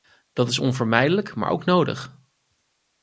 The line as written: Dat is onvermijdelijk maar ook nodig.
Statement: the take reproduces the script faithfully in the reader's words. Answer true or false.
true